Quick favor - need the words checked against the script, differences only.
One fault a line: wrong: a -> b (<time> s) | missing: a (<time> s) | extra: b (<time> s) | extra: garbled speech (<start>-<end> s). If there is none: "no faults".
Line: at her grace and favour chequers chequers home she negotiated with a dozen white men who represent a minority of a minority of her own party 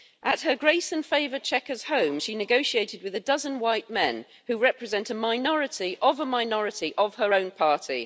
missing: chequers (1.8 s)